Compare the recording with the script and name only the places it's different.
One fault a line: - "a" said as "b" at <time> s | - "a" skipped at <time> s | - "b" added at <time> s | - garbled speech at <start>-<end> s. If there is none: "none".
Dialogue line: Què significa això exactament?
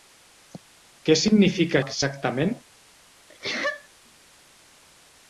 - "això" skipped at 1.8 s